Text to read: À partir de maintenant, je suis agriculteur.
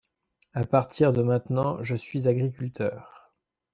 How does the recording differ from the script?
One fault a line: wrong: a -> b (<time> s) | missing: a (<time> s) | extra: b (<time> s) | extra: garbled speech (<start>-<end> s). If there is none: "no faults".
no faults